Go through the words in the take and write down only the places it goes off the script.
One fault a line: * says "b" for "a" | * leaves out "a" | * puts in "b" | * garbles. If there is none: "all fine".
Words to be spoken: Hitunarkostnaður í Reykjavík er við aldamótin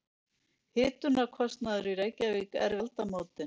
* leaves out "við"